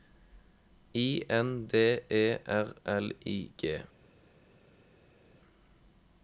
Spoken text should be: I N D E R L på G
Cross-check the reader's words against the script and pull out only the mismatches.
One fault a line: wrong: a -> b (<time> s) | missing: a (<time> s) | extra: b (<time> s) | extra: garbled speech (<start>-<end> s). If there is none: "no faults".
wrong: på -> I (3.2 s)